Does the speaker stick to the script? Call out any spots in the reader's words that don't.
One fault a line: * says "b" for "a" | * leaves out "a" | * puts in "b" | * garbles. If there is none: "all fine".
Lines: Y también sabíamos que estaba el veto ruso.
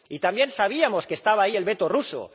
* puts in "ahí"